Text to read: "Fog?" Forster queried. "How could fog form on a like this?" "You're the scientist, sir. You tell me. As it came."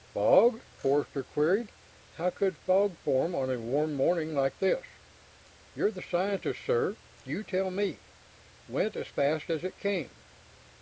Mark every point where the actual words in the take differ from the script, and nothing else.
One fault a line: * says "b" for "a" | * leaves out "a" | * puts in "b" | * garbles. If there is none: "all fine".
* puts in "warm morning"
* puts in "Went as fast"